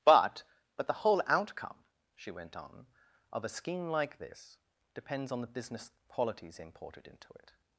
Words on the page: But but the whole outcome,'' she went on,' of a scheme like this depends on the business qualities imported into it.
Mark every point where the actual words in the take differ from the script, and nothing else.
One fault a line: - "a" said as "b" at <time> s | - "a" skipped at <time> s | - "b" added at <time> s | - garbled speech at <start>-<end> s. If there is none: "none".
none